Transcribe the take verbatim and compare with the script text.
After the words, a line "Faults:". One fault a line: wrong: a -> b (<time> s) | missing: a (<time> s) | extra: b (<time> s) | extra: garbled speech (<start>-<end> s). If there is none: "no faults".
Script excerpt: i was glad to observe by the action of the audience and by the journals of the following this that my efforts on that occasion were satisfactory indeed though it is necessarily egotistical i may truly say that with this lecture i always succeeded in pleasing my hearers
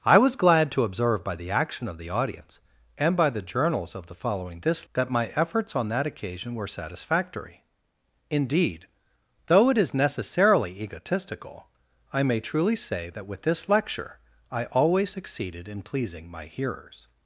i was glad to observe by the action of the audience and by the journals of the following this that my efforts on that occasion were satisfactory indeed though it is necessarily egotistical i may truly say that with this lecture i always succeeded in pleasing my hearers
Faults:
no faults